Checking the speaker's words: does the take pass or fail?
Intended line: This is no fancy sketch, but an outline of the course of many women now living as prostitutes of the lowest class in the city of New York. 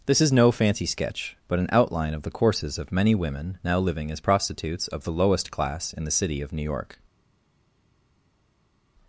fail